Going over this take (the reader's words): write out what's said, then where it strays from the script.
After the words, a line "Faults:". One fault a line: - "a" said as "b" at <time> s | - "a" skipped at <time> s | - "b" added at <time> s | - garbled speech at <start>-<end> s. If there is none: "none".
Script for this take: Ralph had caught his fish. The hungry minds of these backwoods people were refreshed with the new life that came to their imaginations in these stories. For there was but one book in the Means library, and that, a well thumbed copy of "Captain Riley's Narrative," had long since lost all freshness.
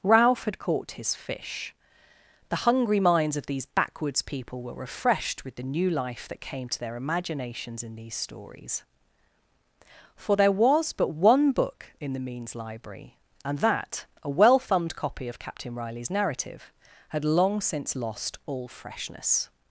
Ralph had caught his fish. The hungry minds of these backwoods people were refreshed with the new life that came to their imaginations in these stories. For there was but one book in the Means library, and that, a well thumbed copy of "Captain Riley's Narrative," had long since lost all freshness.
Faults:
none